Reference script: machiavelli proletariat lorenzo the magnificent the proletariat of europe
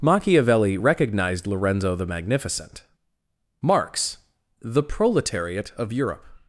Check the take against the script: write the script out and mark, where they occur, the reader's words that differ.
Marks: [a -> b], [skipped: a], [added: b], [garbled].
machiavelli [proletariat -> recognized] lorenzo the magnificent [added: marx] the proletariat of europe